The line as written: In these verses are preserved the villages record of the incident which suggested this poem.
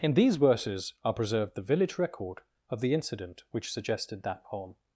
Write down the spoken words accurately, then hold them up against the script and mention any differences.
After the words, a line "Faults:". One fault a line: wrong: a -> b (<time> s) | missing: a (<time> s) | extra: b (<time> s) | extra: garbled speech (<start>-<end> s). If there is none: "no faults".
In these verses are preserved the village record of the incident which suggested that poem.
Faults:
wrong: villages -> village (1.6 s)
wrong: this -> that (4.2 s)